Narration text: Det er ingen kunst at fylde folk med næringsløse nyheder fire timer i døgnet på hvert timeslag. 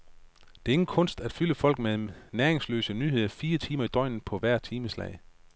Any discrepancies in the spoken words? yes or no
no